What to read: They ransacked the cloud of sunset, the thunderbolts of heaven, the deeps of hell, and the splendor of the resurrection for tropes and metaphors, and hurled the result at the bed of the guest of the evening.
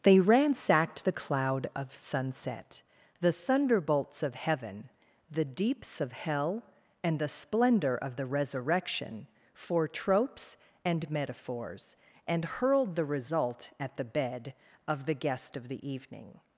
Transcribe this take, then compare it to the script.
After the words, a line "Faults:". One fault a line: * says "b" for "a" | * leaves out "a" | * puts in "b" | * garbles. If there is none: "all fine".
They ransacked the cloud of sunset, the thunderbolts of heaven, the deeps of hell, and the splendor of the resurrection for tropes and metaphors, and hurled the result at the bed of the guest of the evening.
Faults:
all fine